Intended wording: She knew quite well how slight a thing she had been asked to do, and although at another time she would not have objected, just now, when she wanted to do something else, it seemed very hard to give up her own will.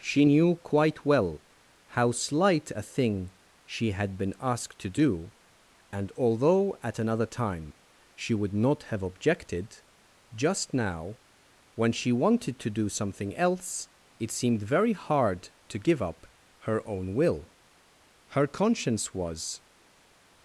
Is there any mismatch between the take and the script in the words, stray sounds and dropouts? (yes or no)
yes